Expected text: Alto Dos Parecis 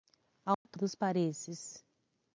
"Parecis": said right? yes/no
yes